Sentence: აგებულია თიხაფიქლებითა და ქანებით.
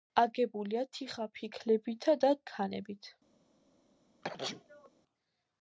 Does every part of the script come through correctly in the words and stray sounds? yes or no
no